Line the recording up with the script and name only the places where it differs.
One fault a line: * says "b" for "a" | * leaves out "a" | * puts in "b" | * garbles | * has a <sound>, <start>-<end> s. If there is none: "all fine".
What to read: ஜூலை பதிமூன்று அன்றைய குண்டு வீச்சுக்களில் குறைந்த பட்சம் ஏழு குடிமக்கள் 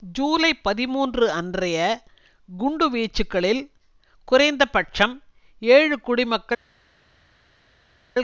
all fine